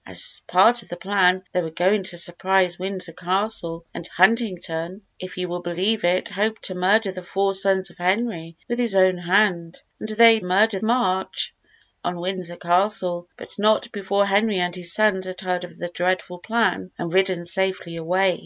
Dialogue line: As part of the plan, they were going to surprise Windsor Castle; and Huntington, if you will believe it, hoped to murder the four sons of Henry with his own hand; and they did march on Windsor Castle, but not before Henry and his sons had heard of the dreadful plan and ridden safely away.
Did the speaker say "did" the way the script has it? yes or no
no